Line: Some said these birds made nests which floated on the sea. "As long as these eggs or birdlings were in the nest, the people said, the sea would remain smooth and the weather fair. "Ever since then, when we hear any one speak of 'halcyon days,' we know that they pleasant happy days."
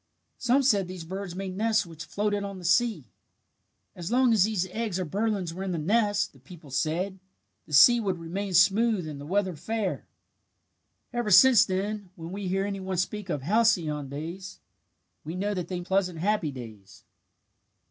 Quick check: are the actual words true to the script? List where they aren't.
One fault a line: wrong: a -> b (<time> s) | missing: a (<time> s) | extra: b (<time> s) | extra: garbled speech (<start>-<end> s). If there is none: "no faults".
no faults